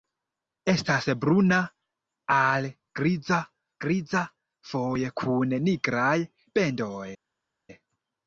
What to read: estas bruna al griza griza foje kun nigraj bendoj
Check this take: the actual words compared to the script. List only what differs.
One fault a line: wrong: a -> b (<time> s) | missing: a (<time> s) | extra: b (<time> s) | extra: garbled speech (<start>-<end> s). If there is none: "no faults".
no faults